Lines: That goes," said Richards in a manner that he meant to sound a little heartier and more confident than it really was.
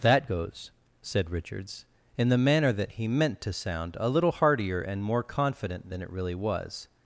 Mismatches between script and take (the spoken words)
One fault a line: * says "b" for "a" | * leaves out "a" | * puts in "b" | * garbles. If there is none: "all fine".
* says "the" for "a"